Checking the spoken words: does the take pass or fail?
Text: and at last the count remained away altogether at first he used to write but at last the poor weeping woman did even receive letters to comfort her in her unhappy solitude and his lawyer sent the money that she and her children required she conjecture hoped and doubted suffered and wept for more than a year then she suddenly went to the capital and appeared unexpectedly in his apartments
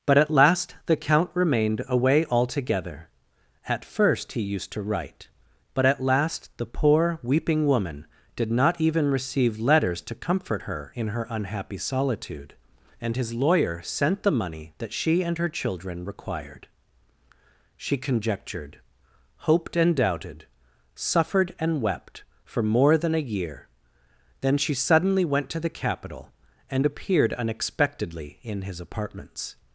fail